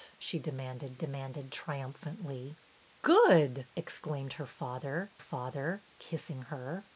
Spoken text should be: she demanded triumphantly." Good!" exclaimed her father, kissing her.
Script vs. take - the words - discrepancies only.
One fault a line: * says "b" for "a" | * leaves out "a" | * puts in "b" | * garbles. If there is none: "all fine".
* puts in "demanded"
* puts in "father"